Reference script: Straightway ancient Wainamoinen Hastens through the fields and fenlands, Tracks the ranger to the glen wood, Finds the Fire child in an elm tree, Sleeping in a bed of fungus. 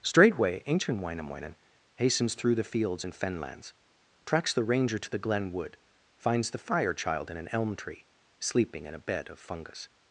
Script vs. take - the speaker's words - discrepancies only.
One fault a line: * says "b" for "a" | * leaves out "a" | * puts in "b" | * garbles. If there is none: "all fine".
all fine